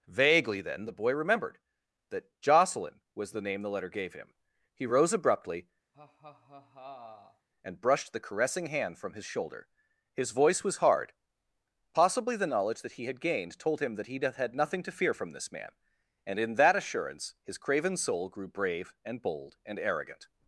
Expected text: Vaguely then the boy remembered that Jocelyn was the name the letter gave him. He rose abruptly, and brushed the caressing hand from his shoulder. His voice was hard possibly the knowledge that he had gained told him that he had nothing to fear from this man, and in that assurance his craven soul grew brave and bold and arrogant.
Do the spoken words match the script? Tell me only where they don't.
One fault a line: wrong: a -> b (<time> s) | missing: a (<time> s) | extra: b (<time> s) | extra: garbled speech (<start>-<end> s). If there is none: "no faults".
no faults